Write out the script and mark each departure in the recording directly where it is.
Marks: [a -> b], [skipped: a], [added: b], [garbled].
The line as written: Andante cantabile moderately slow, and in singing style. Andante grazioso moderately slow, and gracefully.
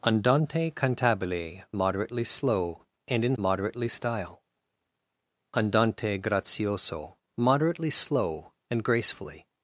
Andante cantabile moderately slow, and in [singing -> moderately] style. Andante grazioso moderately slow, and gracefully.